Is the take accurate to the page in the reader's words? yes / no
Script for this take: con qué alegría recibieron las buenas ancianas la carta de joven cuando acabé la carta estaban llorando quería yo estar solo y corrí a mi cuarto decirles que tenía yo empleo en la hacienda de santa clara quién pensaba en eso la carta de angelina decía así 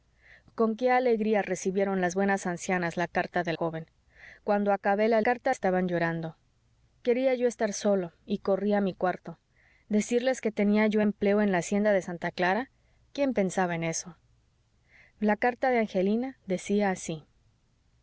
yes